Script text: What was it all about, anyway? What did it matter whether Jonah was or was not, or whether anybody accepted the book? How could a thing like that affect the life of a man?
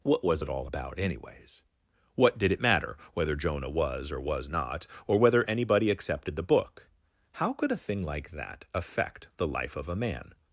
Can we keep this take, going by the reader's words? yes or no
no